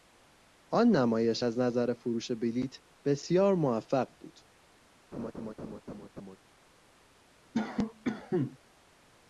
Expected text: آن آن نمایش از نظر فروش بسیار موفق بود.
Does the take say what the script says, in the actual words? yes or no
no